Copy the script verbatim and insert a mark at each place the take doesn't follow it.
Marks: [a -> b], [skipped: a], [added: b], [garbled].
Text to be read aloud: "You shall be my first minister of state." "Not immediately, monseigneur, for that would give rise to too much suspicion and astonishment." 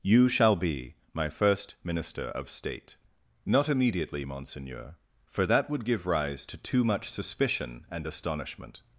"You shall be my first minister of state." "Not immediately, monseigneur, for that would give rise to too much suspicion and astonishment."